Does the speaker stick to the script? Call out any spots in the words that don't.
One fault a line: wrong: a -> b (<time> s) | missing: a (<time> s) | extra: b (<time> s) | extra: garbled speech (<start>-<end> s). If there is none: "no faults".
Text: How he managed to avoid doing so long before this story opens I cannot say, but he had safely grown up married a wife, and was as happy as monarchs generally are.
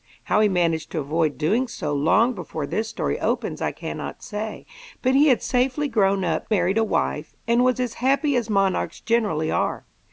no faults